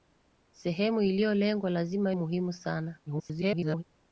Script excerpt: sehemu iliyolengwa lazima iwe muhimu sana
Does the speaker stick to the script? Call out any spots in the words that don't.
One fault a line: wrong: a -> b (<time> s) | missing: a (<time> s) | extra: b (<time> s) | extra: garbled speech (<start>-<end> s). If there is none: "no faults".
missing: iwe (2.1 s)
extra: garbled speech (3.1-3.8 s)